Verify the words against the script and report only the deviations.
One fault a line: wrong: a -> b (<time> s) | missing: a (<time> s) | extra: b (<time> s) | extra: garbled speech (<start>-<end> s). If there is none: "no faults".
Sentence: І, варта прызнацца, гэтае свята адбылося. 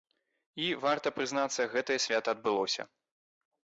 no faults